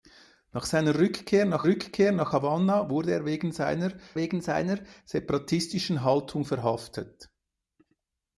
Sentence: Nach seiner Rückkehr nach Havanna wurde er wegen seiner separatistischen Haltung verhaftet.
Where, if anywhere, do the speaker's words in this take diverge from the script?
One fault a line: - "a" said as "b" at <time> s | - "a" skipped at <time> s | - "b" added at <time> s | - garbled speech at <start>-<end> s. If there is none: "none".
- "Rückkehr nach" added at 1.6 s
- "wegen seiner" added at 4.2 s